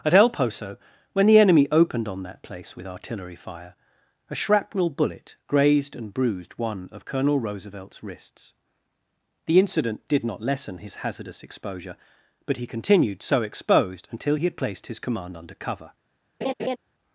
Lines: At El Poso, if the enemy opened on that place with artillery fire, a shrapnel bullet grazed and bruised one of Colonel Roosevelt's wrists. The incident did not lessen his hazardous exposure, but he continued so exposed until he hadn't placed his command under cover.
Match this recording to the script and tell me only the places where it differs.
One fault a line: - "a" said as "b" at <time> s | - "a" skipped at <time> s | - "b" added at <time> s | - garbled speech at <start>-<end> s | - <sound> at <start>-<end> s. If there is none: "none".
- "if" said as "when" at 1.1 s
- "hadn't" said as "had" at 14.4 s
- laugh at 16.4-16.8 s